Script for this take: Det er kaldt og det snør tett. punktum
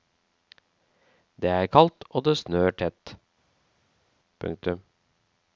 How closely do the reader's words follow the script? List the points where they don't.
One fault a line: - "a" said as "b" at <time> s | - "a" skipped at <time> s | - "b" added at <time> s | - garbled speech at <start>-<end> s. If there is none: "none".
none